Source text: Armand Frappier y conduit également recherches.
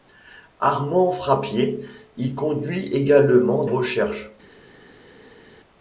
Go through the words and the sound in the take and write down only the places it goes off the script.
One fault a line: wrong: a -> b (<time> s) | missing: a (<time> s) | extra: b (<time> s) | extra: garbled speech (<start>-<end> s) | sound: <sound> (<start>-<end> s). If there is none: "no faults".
no faults